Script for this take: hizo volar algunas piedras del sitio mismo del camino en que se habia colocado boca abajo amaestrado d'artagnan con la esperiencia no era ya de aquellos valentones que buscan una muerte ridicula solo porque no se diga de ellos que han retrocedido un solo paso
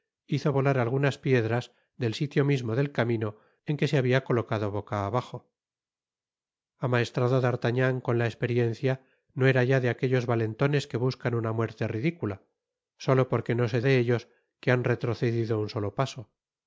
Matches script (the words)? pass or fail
fail